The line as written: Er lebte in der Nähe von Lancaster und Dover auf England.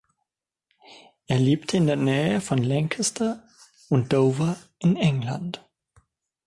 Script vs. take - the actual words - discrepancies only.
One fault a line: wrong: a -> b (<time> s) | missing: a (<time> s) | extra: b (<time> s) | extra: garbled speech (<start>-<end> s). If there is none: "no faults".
wrong: auf -> in (4.8 s)